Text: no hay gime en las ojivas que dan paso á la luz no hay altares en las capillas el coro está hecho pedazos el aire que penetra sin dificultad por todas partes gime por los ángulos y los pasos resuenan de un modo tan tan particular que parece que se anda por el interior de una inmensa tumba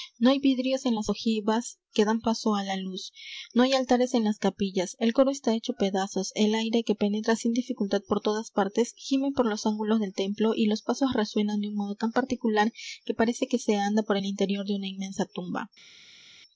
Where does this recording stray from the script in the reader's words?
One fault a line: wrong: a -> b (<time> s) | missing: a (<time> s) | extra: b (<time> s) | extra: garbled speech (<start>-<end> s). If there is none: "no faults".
wrong: gime -> vidrios (0.4 s)
extra: del templo (10.0 s)
missing: tan (12.1 s)